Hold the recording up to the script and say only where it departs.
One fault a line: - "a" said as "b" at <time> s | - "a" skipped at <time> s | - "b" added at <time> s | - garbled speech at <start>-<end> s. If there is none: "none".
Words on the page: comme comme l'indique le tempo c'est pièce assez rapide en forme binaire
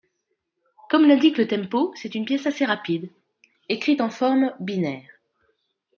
- "comme" skipped at 1.1 s
- "une" added at 2.1 s
- "écrite" added at 3.7 s